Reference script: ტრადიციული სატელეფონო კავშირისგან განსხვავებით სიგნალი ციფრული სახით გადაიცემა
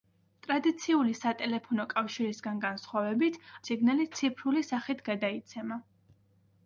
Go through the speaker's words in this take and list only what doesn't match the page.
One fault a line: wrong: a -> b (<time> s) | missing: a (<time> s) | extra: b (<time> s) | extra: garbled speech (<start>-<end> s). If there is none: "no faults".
no faults